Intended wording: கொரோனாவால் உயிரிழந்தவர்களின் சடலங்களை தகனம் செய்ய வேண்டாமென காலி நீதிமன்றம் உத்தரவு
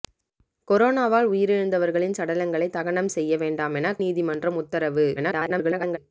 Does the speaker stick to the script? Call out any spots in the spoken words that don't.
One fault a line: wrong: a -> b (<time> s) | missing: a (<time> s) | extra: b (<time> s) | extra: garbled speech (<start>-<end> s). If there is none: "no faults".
missing: காலி (4.0 s)
extra: garbled speech (5.2-6.0 s)